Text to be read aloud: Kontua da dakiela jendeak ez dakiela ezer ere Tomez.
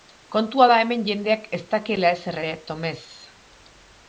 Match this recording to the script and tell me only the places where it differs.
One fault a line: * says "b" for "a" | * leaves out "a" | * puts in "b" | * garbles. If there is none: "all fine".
* says "hemen" for "dakiela"